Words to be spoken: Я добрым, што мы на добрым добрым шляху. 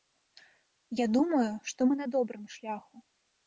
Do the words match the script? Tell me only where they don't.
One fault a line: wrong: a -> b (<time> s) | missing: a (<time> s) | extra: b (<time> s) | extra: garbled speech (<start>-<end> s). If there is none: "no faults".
wrong: добрым -> думаю (1.2 s)
missing: добрым (2.5 s)